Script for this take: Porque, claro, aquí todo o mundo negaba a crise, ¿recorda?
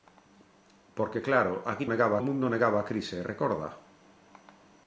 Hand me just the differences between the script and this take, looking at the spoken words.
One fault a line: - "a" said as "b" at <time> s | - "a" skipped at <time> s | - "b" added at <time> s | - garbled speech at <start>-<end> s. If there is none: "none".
- "todo" said as "negaba" at 1.9 s